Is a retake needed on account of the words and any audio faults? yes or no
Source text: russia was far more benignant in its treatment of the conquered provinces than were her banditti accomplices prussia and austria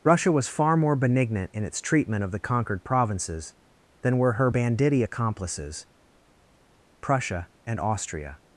no